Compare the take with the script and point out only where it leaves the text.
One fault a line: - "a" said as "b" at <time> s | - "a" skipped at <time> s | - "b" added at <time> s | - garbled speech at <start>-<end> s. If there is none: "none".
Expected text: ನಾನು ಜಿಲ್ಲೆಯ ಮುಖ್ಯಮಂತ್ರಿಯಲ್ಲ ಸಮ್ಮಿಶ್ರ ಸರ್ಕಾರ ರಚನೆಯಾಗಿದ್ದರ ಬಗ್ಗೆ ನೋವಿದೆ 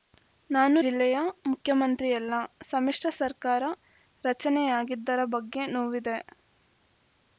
none